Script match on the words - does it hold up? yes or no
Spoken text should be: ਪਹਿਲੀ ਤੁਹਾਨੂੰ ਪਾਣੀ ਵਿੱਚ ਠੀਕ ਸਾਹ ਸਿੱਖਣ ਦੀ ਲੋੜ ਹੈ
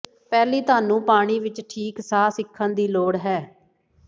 yes